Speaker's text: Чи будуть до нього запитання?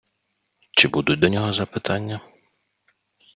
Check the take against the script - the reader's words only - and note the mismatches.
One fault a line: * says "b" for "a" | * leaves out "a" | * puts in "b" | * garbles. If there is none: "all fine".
all fine